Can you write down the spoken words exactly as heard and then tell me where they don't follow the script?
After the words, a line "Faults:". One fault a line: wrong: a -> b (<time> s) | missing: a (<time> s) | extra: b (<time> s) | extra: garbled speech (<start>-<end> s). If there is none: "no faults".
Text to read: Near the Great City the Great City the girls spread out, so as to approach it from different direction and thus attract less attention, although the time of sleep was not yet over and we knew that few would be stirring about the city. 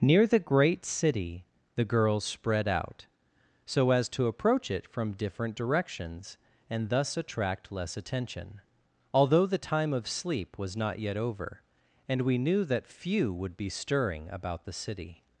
Near the Great City the girls spread out, so as to approach it from different directions and thus attract less attention, although the time of sleep was not yet over and we knew that few would be stirring about the city.
Faults:
missing: Great City the (1.9 s)
wrong: direction -> directions (5.5 s)